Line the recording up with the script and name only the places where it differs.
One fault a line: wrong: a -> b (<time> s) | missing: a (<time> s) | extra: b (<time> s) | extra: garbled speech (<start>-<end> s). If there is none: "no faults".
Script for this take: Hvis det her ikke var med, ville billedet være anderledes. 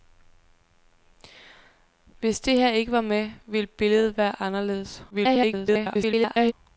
extra: garbled speech (5.1-6.5 s)